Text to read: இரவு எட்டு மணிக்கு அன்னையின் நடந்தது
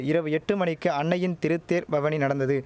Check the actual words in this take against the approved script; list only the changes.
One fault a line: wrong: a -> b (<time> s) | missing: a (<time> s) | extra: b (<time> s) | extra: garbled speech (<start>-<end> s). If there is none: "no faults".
extra: திருத்தேர் பவனி (1.4 s)